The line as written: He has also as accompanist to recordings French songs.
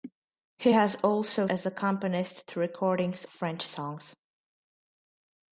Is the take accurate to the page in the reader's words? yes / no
yes